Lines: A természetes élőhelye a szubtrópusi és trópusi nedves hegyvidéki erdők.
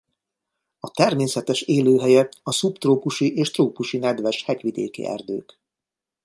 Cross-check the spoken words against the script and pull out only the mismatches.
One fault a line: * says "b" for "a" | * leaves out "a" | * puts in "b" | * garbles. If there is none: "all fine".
all fine